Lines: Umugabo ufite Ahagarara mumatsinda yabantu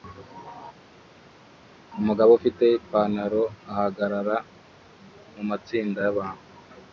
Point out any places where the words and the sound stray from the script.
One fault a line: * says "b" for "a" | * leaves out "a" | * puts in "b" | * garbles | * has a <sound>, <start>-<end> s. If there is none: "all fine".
* puts in "Ipanaro"